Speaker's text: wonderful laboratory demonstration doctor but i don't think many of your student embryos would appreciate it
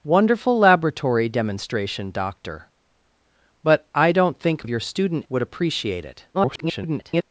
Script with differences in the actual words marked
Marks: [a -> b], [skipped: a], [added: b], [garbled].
wonderful laboratory demonstration doctor but i don't think [skipped: many] of your student [skipped: embryos] would appreciate it [garbled]